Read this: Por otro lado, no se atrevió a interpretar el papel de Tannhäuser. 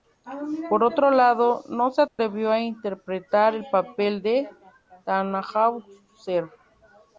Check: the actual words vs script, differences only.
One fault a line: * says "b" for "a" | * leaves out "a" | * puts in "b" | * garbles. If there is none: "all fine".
all fine